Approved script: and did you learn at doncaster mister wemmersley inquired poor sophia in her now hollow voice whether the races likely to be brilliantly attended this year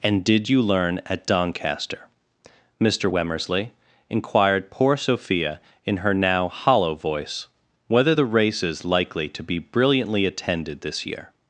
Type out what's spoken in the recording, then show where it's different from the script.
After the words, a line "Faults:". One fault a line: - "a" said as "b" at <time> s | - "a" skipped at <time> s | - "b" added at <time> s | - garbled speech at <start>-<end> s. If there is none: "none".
and did you learn at doncaster mister wemmersley inquired poor sophia in her now hollow voice whether the races likely to be brilliantly attended this year
Faults:
none